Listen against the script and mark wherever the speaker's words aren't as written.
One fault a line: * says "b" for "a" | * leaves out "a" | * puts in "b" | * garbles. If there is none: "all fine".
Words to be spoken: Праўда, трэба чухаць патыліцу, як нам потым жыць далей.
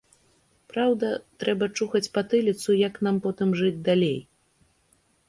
all fine